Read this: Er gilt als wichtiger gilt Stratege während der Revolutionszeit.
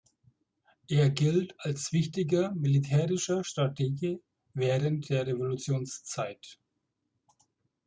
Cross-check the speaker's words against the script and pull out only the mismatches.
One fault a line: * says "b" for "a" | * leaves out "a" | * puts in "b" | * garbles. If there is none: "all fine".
* says "militärischer" for "gilt"